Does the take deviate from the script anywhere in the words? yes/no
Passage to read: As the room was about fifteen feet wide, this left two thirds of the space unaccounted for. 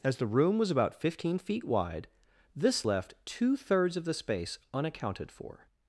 no